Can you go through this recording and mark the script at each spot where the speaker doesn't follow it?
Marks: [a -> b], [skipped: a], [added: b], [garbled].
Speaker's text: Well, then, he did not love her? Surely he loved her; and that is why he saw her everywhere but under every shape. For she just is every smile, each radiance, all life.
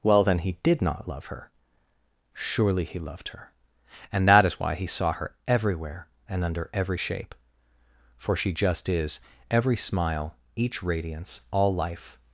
Well, then, he did not love her? Surely he loved her; and that is why he saw her everywhere [but -> and] under every shape. For she just is every smile, each radiance, all life.